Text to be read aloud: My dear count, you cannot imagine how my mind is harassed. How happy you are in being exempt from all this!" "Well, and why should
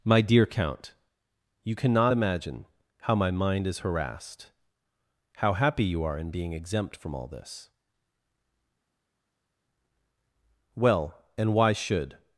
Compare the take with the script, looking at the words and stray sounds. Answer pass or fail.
pass